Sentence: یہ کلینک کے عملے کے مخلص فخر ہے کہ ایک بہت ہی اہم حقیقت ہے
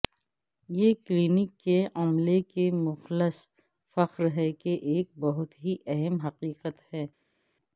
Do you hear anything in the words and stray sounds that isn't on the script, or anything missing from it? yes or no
no